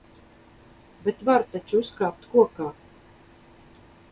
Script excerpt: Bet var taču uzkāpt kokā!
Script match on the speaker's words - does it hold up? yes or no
yes